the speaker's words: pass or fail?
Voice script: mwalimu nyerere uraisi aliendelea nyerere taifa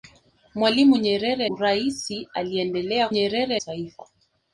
pass